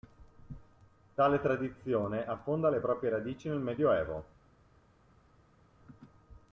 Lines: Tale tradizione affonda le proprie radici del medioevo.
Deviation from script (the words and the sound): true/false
true